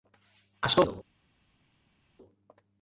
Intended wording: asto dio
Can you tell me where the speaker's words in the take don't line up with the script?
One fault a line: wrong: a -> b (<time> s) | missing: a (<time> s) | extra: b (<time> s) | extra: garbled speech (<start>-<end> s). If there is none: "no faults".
no faults